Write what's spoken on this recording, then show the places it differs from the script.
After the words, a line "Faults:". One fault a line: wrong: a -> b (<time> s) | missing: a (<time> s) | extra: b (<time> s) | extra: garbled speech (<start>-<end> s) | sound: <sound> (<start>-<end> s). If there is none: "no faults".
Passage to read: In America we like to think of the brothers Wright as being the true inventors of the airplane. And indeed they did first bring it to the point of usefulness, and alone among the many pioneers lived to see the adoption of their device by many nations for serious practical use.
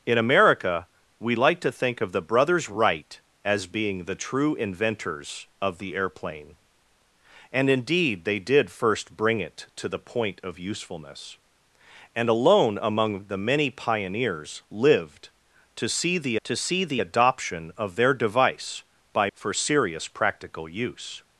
In America we like to think of the brothers Wright as being the true inventors of the airplane. And indeed they did first bring it to the point of usefulness, and alone among the many pioneers lived to see the to see the adoption of their device by for serious practical use.
Faults:
extra: to see the (16.4 s)
missing: many nations (19.3 s)